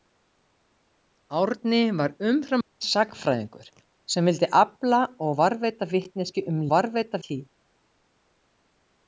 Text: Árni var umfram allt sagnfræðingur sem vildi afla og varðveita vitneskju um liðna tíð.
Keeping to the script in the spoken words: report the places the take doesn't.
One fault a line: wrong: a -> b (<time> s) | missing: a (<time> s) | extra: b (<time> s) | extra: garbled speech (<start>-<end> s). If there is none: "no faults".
wrong: liðna -> varðveita (6.7 s)